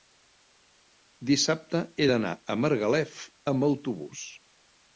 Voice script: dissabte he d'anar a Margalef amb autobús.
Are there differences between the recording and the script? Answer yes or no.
no